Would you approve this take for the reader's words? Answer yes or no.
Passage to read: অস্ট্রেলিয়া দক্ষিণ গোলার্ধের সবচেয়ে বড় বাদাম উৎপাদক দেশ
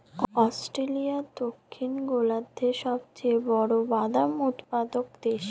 yes